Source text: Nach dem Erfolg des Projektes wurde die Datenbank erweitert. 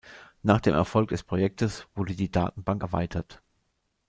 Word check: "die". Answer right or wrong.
right